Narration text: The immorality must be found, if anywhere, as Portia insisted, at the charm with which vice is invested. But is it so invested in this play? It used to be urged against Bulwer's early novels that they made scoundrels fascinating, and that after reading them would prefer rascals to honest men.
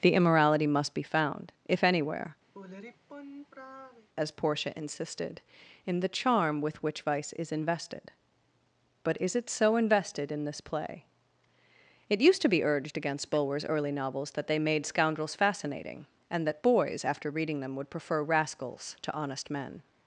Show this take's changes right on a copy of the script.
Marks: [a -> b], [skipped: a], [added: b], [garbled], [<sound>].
The immorality must be found, if anywhere, [sigh] as Portia insisted, [at -> in] the charm with which vice is invested. But is it so invested in this play? It used to be urged against Bulwer's early novels that they made scoundrels fascinating, and that [added: boys] after reading them would prefer rascals to honest men.